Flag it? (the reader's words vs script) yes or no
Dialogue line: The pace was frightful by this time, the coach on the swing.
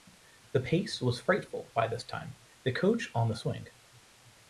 no